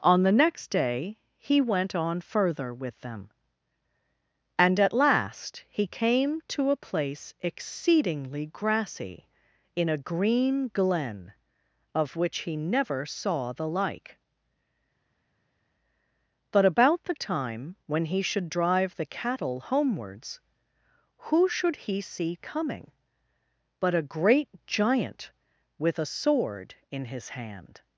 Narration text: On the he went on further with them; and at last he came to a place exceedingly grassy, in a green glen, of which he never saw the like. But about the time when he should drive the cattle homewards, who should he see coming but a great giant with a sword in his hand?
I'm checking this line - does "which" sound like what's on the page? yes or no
yes